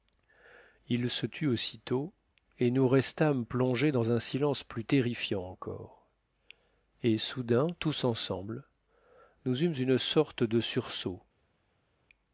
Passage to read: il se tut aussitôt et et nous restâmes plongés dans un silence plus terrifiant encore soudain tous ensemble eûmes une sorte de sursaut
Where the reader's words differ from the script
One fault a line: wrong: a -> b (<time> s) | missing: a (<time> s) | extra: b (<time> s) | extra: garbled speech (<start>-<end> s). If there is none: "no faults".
missing: et (2.7 s)
extra: et (7.0 s)
extra: nous (9.5 s)